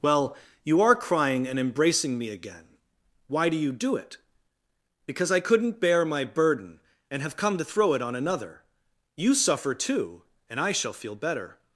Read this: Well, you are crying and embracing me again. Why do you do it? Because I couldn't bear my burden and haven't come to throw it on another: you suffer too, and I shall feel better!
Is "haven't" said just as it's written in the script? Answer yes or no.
no